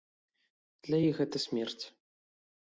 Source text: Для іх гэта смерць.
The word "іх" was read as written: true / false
true